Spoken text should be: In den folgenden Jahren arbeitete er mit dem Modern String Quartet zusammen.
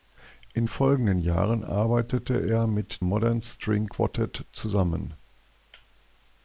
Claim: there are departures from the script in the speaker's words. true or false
true